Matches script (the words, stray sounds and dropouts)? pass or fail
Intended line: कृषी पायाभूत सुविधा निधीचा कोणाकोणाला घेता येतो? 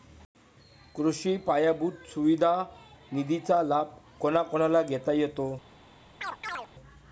fail